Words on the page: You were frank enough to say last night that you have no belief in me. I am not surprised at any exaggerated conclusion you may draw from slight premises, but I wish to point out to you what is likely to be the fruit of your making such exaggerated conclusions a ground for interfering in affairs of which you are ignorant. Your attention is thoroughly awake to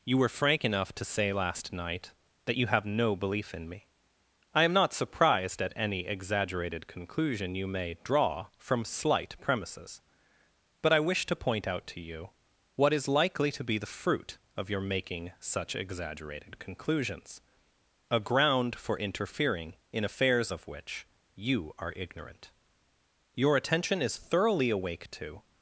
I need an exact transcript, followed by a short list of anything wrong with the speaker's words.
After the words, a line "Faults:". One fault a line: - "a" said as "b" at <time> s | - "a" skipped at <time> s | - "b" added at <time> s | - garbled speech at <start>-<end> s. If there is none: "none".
You were frank enough to say last night that you have no belief in me. I am not surprised at any exaggerated conclusion you may draw from slight premises, but I wish to point out to you what is likely to be the fruit of your making such exaggerated conclusions a ground for interfering in affairs of which you are ignorant. Your attention is thoroughly awake to
Faults:
none